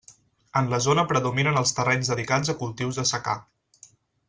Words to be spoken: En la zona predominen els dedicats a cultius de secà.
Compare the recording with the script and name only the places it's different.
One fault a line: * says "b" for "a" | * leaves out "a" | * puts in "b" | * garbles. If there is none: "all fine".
* puts in "terrenys"